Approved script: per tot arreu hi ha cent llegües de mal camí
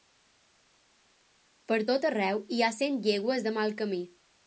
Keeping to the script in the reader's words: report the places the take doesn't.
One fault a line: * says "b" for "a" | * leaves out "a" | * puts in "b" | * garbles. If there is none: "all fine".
all fine